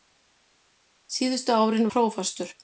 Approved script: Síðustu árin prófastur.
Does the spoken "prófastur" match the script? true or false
true